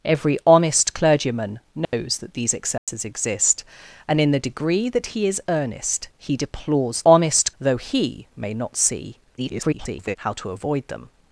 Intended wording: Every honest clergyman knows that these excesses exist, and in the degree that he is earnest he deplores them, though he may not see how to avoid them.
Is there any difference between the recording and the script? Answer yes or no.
yes